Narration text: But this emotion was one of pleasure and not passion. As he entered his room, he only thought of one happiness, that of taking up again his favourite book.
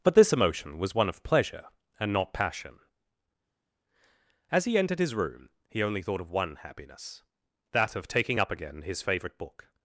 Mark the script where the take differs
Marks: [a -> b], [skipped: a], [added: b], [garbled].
But this emotion was one of pleasure and not passion. As he entered his room, he only thought of one happiness, that of taking up again his favourite book.